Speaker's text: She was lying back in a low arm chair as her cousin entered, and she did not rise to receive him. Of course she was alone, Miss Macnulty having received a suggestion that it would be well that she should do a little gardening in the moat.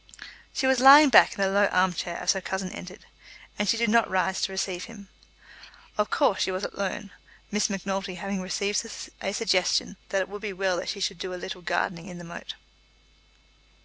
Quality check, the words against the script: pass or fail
pass